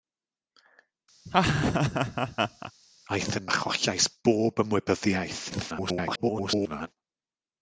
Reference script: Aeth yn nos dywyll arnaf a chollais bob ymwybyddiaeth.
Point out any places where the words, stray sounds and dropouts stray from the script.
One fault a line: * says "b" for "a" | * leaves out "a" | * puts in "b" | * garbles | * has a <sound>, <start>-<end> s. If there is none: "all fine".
* has a laugh, 1.3-2.7 s
* leaves out "nos dywyll arnaf"
* garbles